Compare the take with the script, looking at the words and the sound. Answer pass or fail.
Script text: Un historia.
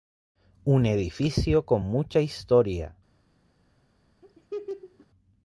fail